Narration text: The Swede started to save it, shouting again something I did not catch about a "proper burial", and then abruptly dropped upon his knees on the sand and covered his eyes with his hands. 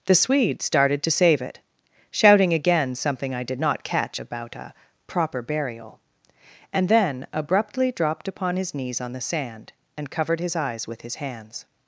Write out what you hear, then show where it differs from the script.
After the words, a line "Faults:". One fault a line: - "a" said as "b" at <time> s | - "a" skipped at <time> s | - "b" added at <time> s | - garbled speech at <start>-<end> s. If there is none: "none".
The Swede started to save it, shouting again something I did not catch about a "proper burial", and then abruptly dropped upon his knees on the sand and covered his eyes with his hands.
Faults:
none